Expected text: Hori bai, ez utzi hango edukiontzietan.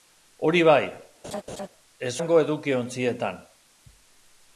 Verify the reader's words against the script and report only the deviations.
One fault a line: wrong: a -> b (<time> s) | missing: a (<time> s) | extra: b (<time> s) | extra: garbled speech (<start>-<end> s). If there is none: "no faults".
missing: utzi (2.1 s)